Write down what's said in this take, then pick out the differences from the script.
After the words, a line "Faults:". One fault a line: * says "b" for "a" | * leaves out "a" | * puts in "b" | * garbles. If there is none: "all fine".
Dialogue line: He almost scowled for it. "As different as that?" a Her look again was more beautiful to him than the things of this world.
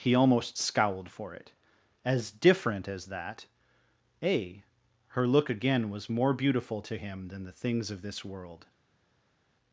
He almost scowled for it. "As different as that?" a Her look again was more beautiful to him than the things of this world.
Faults:
all fine